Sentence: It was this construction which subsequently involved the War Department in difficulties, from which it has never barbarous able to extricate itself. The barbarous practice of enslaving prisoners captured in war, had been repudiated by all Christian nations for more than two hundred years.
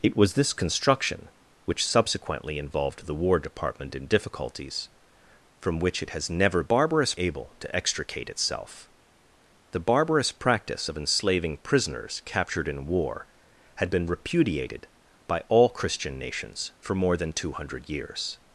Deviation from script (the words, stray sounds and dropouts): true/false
false